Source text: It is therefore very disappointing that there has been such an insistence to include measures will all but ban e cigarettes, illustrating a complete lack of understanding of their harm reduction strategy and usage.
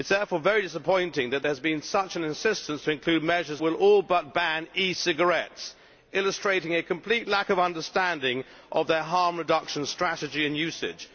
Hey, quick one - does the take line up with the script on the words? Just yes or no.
yes